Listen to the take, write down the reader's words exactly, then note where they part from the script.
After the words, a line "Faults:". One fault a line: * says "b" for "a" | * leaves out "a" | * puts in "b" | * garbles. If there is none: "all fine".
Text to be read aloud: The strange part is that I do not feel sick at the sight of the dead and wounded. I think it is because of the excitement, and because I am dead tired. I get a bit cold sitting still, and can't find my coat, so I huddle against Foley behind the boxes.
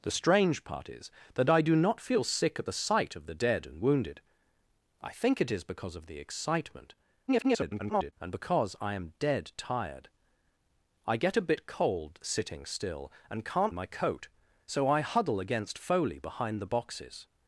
The strange part is that I do not feel sick at the sight of the dead and wounded. I think it is because of the excitement, [garbled] and because I am dead tired. I get a bit cold sitting still, and can't my coat, so I huddle against Foley behind the boxes.
Faults:
* garbles
* leaves out "find"